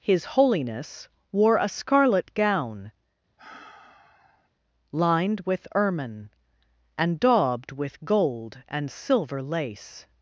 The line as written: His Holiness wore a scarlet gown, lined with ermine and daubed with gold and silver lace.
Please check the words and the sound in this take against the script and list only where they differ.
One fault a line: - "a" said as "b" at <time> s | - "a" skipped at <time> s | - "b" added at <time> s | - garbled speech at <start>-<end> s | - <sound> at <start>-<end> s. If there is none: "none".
- sigh at 3.4-4.5 s